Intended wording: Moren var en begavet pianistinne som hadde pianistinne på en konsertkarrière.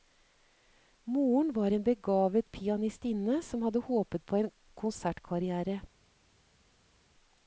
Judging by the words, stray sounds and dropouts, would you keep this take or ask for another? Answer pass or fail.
fail